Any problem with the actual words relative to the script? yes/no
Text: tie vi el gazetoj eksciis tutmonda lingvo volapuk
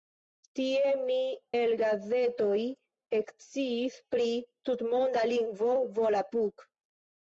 yes